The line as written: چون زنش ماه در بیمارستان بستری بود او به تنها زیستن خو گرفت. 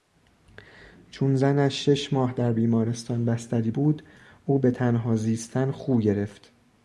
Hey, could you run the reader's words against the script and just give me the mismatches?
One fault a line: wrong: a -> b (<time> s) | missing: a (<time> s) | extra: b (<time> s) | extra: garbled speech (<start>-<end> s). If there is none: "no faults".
extra: شش (1.9 s)